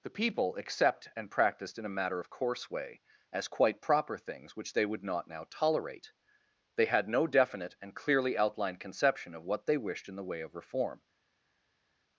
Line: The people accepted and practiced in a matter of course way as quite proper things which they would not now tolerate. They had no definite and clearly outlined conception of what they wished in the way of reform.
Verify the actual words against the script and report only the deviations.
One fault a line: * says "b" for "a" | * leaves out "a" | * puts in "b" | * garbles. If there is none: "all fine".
* says "accept" for "accepted"